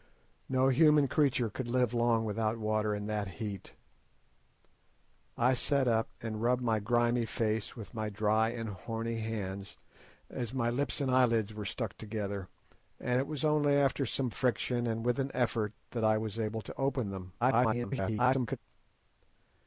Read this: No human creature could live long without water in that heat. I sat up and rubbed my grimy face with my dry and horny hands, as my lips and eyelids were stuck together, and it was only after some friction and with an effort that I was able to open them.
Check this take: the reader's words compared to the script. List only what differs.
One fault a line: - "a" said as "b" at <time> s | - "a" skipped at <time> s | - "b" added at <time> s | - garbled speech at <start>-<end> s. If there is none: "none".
- garbled speech at 17.4-18.6 s